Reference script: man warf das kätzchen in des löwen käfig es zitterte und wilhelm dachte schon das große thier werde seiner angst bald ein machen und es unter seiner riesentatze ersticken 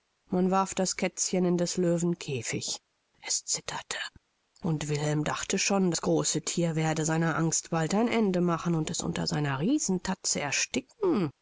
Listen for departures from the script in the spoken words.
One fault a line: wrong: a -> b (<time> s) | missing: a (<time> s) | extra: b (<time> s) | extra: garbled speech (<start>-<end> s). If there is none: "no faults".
extra: ende (8.1 s)